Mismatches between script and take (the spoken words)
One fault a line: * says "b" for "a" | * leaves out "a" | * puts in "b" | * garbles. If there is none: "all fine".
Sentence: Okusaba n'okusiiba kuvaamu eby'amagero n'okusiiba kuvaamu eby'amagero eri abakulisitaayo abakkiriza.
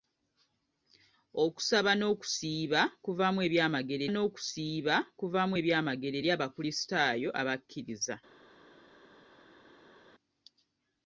all fine